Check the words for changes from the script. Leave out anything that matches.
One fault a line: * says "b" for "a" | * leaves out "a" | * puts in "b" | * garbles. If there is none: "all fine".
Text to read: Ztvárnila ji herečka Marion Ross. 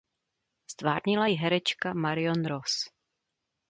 all fine